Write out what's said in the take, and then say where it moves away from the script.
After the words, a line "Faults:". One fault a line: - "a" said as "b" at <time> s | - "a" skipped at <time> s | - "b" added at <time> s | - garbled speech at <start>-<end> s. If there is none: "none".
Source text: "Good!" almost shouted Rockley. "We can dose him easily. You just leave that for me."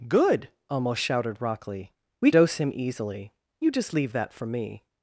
"Good!" almost shouted Rockley. "We dose him easily. You just leave that for me."
Faults:
- "can" skipped at 2.3 s